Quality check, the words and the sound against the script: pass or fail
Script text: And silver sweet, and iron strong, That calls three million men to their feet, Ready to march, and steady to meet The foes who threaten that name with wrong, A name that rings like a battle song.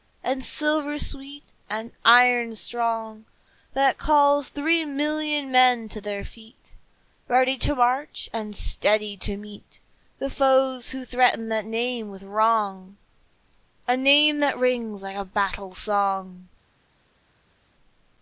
pass